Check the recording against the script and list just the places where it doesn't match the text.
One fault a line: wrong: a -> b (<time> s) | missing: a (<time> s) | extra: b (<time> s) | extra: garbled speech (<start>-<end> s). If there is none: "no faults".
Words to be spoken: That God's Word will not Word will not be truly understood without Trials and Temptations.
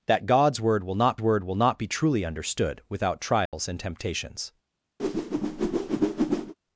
no faults